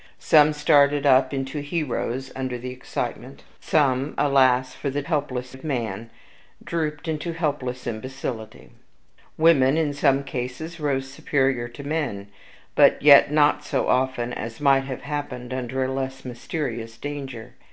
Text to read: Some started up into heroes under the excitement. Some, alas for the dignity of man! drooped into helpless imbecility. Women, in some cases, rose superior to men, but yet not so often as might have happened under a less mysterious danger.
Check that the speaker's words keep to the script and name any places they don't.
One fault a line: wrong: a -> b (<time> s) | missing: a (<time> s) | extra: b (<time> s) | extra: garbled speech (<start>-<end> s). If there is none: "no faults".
wrong: dignity -> helpless (5.0 s)